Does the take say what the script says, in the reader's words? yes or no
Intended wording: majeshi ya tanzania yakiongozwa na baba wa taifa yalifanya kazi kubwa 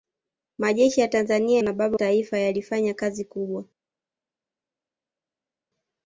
no